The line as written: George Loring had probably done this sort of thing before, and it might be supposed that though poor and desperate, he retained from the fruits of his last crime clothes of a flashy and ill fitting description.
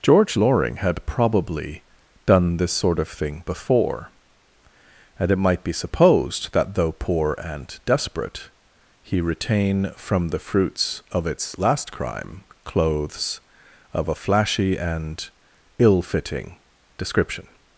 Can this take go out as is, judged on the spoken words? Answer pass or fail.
fail